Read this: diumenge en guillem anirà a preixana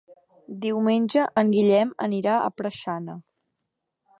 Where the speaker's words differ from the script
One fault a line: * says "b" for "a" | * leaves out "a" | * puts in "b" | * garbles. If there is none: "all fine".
all fine